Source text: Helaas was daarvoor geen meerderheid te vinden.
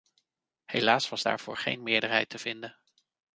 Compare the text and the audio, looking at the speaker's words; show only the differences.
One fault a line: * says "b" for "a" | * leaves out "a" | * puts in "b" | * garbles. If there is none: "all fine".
all fine